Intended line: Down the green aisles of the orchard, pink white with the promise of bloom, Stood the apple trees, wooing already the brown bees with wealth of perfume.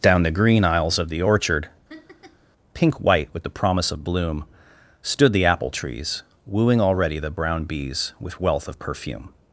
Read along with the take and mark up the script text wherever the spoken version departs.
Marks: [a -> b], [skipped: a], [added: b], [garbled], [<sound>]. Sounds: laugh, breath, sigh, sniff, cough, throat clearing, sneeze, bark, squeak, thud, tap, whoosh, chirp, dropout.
Down the green aisles of the orchard, [laugh] pink white with the promise of bloom, Stood the apple trees, wooing already the brown bees with wealth of perfume.